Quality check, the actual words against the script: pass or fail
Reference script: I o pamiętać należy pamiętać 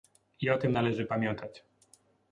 fail